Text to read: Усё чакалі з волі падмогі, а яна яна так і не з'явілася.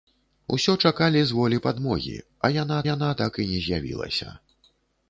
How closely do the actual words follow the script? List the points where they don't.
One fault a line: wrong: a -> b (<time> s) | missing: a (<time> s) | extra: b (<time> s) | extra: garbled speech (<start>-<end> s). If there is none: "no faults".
no faults